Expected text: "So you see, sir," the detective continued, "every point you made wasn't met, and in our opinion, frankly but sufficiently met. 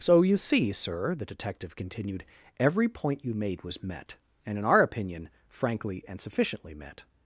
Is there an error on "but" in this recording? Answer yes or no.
yes